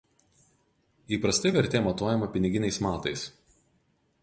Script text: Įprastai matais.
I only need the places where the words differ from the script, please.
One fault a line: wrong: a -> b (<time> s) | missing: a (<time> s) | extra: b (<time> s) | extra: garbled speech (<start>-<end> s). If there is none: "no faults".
extra: vertė matuojama piniginiais (1.6 s)